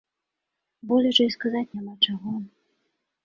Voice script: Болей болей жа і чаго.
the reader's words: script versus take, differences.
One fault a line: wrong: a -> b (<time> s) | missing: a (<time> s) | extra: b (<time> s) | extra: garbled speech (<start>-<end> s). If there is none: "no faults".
missing: болей (1.1 s)
extra: сказаць няма (1.4 s)